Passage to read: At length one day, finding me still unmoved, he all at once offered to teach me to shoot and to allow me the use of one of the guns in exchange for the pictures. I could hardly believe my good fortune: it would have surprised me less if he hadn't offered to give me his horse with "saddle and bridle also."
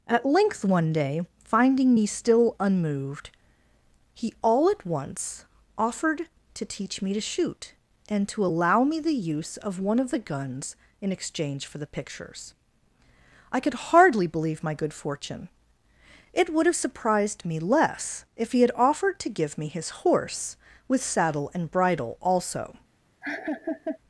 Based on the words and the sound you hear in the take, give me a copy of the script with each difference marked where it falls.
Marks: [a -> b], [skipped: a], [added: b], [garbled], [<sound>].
At length one day, finding me still unmoved, he all at once offered to teach me to shoot and to allow me the use of one of the guns in exchange for the pictures. I could hardly believe my good fortune: it would have surprised me less if he [hadn't -> had] offered to give me his horse with "saddle and bridle also." [laugh]